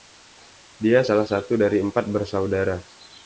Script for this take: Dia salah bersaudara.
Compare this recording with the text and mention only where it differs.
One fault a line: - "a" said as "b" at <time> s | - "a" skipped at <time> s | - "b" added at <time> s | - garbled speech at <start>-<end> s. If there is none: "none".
- "satu dari empat" added at 1.3 s